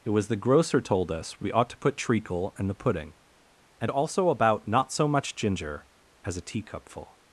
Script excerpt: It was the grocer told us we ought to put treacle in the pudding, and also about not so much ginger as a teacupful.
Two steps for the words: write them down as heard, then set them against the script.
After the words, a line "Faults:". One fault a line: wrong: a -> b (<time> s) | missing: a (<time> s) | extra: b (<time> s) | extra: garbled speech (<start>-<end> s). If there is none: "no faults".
It was the grocer told us we ought to put treacle in the pudding, and also about not so much ginger as a teacupful.
Faults:
no faults